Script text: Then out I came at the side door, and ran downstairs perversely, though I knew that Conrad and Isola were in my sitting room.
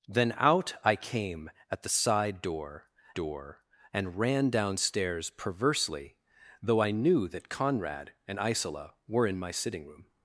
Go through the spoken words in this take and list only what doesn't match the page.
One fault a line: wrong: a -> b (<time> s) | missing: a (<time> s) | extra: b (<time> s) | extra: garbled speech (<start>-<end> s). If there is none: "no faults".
extra: door (3.1 s)